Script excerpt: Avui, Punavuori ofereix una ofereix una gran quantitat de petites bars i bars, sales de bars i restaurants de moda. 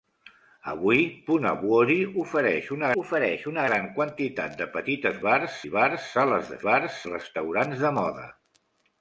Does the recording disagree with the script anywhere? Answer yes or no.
no